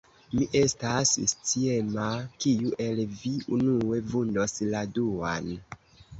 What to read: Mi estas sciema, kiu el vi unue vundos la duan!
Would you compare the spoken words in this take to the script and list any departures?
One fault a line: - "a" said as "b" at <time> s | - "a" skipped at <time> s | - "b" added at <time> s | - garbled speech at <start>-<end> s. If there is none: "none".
none